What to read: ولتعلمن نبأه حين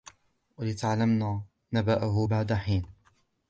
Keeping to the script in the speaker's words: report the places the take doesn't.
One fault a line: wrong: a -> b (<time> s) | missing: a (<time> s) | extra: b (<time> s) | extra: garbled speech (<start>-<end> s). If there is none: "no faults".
extra: بعد (2.2 s)